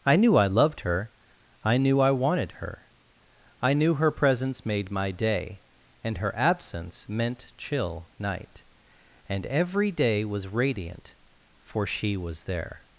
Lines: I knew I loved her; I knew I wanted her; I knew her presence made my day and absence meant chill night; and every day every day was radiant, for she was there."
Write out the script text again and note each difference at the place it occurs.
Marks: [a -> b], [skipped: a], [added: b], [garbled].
I knew I loved her; I knew I wanted her; I knew her presence made my day and [added: her] absence meant chill night; and every day [skipped: every day] was radiant, for she was there."